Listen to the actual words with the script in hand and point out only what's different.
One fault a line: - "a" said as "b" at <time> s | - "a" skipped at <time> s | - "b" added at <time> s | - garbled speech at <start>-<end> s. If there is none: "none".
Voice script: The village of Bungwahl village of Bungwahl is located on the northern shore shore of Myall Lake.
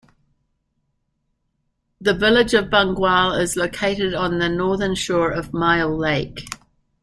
- "village of Bungwahl" skipped at 3.4 s
- "shore" skipped at 5.3 s